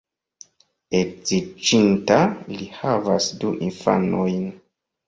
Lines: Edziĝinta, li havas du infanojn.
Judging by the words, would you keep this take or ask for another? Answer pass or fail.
pass